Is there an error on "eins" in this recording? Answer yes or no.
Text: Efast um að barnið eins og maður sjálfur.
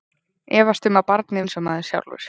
no